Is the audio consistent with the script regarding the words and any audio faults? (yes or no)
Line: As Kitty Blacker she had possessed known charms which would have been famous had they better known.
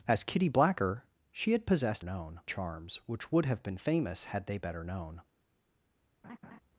no